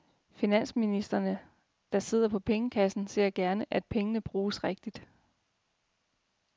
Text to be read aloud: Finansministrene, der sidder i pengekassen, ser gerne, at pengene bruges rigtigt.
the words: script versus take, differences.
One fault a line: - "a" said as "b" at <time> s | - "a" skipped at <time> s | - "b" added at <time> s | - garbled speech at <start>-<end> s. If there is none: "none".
- "i" said as "på" at 2.3 s